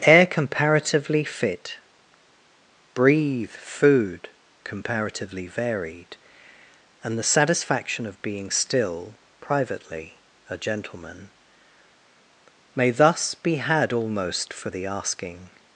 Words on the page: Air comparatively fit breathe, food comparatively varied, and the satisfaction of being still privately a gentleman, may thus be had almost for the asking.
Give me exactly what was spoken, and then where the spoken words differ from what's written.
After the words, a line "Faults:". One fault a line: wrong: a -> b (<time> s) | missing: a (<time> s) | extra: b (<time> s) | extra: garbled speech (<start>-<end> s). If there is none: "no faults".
Air comparatively fit breathe, food comparatively varied, and the satisfaction of being still privately a gentleman, may thus be had almost for the asking.
Faults:
no faults